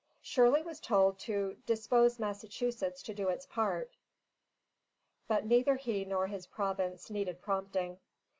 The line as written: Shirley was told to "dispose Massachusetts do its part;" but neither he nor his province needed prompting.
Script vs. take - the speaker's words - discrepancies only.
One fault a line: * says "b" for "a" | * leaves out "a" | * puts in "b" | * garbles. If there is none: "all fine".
* puts in "to"